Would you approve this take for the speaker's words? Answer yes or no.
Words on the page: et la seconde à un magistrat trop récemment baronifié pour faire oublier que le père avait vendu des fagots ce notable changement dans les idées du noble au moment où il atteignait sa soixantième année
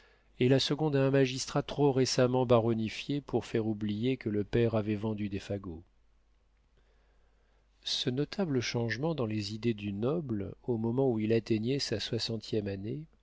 yes